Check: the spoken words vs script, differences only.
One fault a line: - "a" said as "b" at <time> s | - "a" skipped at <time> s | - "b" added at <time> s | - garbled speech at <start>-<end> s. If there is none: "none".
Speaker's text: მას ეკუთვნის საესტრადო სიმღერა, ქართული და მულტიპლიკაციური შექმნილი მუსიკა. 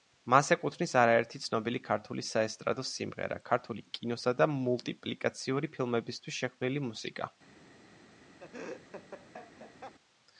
- "არაერთი ცნობილი ქართული" added at 1.0 s
- "კინოსა" added at 4.0 s
- "ფილმებისთვის" added at 5.8 s